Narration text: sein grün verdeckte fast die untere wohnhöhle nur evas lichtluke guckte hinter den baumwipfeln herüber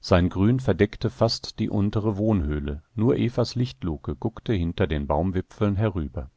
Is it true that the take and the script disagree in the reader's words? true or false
false